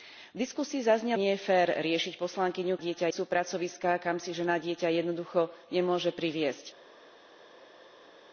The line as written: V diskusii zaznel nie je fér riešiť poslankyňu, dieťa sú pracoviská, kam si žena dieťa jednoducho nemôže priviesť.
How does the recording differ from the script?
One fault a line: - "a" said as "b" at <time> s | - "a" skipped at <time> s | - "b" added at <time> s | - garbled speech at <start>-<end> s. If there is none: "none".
none